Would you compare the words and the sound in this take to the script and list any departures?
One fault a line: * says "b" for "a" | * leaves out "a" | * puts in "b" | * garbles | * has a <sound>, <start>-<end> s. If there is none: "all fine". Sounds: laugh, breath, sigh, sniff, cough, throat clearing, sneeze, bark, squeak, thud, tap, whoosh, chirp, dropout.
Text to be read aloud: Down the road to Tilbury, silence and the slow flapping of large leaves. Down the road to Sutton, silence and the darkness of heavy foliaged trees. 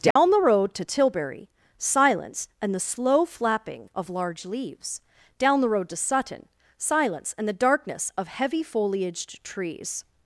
* has a dropout, 0.1-0.2 s